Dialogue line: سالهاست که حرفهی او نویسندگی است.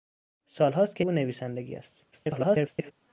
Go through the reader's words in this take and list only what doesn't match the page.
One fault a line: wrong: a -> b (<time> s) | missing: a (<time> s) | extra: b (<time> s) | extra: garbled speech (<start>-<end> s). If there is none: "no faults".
missing: حرفهی (1.0 s)
extra: garbled speech (2.1-2.9 s)